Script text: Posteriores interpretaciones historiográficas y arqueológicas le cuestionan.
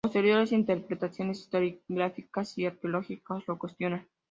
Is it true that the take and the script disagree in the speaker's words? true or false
true